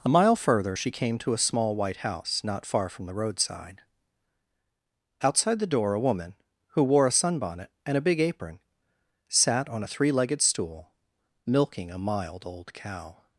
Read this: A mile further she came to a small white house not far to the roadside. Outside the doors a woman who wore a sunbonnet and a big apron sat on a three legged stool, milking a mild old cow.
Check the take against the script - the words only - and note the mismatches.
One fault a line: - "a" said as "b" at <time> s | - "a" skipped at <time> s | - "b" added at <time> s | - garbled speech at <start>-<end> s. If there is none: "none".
- "to" said as "from" at 2.9 s
- "doors" said as "door" at 5.7 s